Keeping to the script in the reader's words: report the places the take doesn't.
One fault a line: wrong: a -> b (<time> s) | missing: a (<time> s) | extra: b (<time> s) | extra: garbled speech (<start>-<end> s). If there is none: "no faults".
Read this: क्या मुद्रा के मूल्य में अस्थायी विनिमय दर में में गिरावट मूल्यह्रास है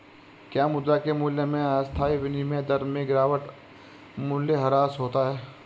missing: में (3.1 s)
extra: होता (5.0 s)